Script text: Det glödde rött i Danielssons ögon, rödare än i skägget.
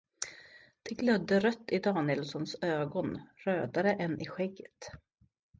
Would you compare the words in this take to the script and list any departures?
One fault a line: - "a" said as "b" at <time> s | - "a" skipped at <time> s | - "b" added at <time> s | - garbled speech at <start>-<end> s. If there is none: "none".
none